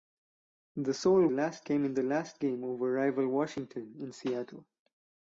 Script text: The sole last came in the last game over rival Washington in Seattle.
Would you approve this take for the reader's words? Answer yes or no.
yes